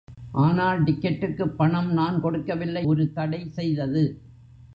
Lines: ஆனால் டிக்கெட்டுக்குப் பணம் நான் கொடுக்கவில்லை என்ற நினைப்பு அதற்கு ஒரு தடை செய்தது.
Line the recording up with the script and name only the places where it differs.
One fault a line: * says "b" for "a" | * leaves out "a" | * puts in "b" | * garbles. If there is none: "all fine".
* leaves out "என்ற நினைப்பு அதற்கு"